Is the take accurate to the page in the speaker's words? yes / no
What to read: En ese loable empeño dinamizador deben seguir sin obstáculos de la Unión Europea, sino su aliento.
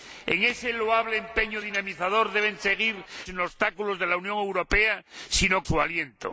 yes